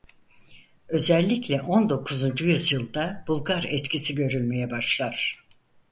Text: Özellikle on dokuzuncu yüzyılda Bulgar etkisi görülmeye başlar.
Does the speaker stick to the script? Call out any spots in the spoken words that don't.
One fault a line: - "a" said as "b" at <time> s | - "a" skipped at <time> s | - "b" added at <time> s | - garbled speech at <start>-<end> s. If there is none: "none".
none